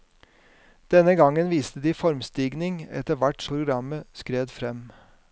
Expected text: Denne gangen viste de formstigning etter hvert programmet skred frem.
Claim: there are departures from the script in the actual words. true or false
false